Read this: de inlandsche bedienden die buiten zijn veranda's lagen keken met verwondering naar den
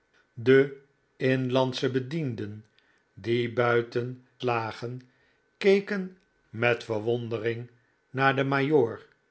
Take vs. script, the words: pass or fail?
fail